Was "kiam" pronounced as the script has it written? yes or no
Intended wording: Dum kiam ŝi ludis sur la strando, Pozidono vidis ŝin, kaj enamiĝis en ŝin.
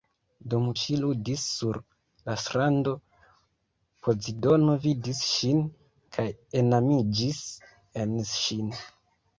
no